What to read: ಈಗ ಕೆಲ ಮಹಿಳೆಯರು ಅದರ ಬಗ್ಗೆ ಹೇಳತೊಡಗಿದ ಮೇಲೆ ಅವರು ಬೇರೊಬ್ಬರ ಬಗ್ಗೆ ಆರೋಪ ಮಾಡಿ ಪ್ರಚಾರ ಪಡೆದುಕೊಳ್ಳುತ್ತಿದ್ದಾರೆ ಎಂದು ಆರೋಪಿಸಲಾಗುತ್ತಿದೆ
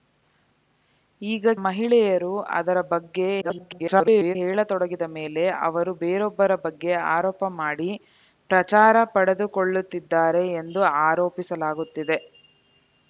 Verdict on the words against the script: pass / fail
fail